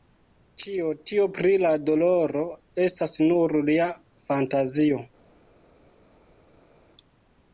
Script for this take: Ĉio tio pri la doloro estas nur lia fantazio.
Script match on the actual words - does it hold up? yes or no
yes